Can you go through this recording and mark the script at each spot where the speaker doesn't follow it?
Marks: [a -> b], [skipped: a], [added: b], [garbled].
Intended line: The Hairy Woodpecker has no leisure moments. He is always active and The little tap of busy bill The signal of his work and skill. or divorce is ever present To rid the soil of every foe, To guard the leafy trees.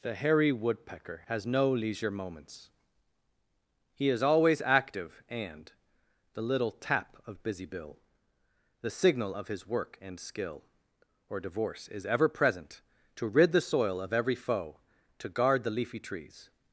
The Hairy Woodpecker has no leisure moments. He is always active and The little tap of busy bill The signal of his work and skill. or divorce is ever present To rid the soil of every foe, To guard the leafy trees.